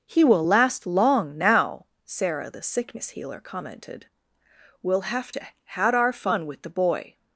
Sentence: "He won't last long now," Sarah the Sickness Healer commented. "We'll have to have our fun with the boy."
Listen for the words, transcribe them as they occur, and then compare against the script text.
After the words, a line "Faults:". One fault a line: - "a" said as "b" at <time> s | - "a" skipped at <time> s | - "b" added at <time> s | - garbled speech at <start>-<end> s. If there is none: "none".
"He will last long now," Sarah the Sickness Healer commented. "We'll have to had our fun with the boy."
Faults:
- "won't" said as "will" at 0.2 s
- "have" said as "had" at 5.6 s